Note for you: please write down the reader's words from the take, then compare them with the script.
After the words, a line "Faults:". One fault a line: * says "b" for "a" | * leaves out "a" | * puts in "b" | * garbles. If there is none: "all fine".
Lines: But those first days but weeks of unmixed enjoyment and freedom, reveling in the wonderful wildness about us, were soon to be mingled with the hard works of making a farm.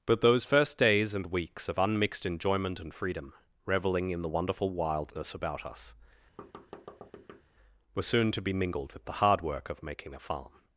But those first days and weeks of unmixed enjoyment and freedom, reveling in the wonderful wildness about us, were soon to be mingled with the hard work of making a farm.
Faults:
* says "and" for "but"
* says "work" for "works"